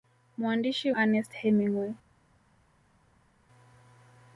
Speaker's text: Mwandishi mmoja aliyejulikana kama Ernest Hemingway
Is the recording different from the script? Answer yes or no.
yes